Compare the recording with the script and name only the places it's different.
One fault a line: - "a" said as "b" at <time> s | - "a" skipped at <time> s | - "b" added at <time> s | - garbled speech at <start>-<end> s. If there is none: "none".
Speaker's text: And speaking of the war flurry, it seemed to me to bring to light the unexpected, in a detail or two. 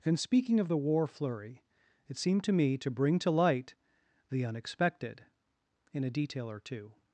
none